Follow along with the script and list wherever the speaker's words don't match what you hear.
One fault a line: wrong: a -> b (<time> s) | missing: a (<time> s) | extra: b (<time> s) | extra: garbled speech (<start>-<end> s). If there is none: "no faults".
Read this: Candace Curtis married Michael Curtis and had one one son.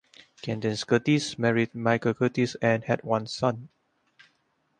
missing: one (3.2 s)